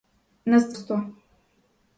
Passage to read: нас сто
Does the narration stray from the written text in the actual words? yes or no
no